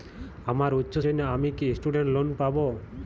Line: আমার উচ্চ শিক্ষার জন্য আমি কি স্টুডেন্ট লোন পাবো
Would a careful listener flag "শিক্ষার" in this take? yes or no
yes